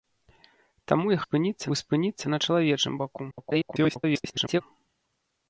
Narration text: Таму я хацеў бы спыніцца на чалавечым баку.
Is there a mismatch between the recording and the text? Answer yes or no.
yes